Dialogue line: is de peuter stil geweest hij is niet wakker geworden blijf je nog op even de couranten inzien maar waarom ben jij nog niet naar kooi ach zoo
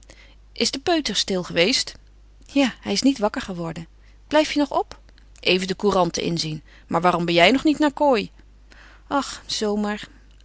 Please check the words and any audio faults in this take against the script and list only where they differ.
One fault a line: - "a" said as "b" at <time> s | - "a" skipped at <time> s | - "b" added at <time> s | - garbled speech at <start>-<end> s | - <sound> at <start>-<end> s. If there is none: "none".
- "ja" added at 2.5 s